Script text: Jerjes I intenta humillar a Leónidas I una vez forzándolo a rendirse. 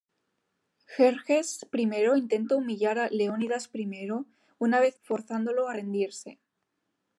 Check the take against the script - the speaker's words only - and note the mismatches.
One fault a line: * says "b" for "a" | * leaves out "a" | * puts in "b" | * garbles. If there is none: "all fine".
all fine